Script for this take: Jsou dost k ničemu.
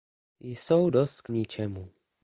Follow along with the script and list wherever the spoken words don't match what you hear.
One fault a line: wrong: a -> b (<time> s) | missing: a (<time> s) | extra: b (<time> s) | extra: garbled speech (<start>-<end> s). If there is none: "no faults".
no faults